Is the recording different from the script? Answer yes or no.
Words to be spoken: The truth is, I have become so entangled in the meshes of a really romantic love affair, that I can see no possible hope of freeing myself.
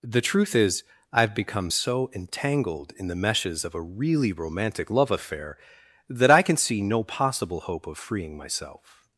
no